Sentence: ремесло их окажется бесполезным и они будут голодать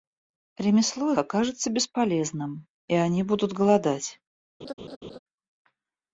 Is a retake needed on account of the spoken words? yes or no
yes